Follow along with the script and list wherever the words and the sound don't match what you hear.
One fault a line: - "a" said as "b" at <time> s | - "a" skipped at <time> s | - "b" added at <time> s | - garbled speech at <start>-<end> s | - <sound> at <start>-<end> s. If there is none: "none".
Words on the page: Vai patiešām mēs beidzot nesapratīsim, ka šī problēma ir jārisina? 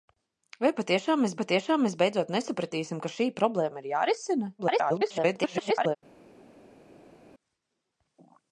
- "patiešām mēs" added at 1.4 s
- garbled speech at 4.6-6.0 s